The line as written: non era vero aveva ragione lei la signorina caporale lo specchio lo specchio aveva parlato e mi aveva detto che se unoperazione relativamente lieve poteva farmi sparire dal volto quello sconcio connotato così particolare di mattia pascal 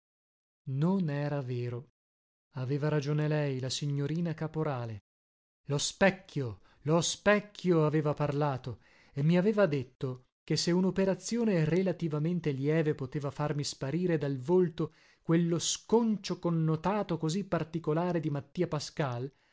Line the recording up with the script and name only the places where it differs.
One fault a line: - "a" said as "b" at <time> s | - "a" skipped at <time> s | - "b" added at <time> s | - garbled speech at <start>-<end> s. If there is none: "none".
none